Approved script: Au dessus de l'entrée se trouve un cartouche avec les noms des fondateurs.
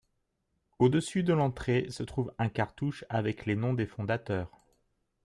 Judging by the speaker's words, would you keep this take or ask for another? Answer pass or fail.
pass